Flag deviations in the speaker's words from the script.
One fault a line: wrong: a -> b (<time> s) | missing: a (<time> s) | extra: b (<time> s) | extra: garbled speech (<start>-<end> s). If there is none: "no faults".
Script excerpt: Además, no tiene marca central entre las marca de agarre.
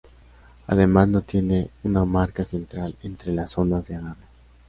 extra: una (1.8 s)
wrong: marca -> zonas (3.5 s)